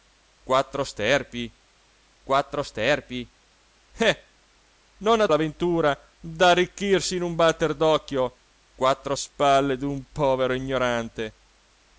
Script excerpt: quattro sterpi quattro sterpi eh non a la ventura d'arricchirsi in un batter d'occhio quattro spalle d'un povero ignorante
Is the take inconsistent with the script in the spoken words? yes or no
no